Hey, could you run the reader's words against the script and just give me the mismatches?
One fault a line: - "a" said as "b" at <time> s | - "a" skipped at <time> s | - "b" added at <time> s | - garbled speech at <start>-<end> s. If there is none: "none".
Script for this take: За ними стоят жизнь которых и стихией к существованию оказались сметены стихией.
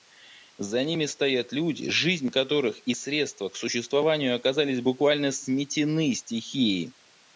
- "люди" added at 1.5 s
- "стихией" said as "средства" at 2.9 s
- "буквально" added at 4.8 s